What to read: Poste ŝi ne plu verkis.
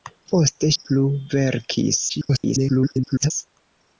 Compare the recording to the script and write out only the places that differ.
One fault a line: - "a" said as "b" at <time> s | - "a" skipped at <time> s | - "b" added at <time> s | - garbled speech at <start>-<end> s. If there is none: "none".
- "ŝi ne" skipped at 0.7 s
- garbled speech at 2.1-3.3 s